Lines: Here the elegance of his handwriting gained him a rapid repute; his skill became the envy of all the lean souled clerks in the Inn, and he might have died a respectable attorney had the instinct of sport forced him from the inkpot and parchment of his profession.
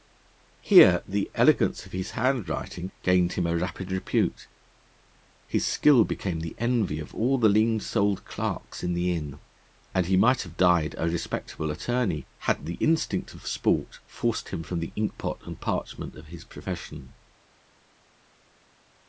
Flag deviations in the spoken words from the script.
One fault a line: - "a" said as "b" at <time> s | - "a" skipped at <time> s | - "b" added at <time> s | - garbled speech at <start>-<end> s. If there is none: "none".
none